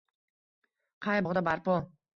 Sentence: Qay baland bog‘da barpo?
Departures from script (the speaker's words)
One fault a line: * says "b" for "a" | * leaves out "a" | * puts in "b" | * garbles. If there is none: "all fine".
* leaves out "baland"